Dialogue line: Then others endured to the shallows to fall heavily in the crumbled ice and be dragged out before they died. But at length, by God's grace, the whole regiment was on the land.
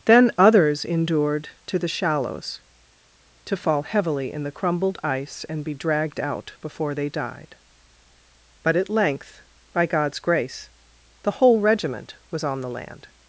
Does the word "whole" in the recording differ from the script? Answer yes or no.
no